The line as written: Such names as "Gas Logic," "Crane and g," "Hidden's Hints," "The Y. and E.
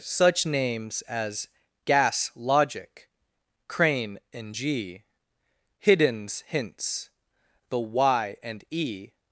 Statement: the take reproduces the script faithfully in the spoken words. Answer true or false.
true